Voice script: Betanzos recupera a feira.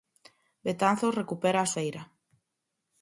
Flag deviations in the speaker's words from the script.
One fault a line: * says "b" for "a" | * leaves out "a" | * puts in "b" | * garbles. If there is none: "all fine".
all fine